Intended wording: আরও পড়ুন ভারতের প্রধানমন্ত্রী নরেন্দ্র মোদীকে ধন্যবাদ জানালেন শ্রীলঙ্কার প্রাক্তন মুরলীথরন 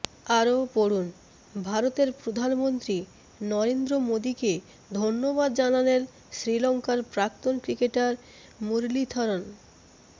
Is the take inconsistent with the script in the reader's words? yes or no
yes